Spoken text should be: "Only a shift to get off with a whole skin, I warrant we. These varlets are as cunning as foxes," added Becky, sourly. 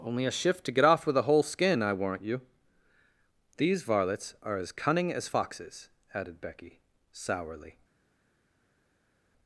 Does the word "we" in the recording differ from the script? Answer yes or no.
yes